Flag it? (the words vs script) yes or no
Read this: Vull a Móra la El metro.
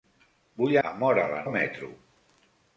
no